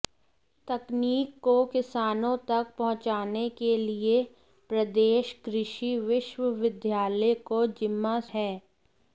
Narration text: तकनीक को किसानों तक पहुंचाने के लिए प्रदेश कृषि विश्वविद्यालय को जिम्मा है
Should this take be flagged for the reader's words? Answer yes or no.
no